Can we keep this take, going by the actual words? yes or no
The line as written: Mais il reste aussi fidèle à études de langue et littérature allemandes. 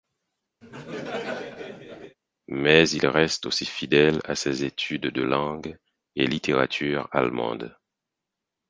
no